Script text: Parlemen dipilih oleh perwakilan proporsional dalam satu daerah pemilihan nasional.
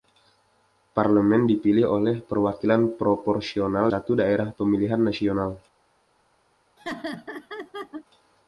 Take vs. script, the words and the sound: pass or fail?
fail